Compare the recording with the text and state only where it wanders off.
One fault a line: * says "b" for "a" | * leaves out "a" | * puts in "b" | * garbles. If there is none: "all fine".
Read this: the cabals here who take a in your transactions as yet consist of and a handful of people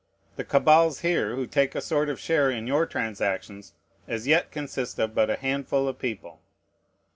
* puts in "sort of share"
* says "but" for "and"